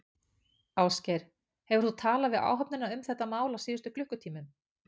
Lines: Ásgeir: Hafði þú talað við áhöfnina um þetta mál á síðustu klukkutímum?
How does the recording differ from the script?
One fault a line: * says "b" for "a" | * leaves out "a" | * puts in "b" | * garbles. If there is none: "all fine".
* says "Hefur" for "Hafði"